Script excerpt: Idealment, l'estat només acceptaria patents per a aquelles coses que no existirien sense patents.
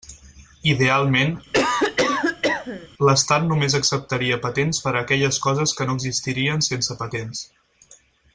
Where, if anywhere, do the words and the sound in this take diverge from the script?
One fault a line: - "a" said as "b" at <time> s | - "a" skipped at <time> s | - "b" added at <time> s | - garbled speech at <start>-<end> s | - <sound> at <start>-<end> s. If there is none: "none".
- cough at 1.5-2.9 s